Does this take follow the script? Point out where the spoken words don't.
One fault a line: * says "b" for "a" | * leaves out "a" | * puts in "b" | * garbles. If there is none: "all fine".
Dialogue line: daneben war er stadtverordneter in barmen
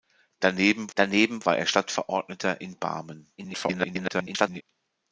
* puts in "daneben"
* garbles